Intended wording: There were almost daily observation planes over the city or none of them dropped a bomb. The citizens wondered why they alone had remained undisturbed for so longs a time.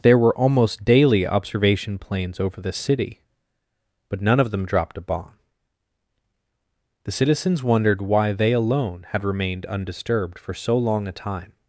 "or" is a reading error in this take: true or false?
true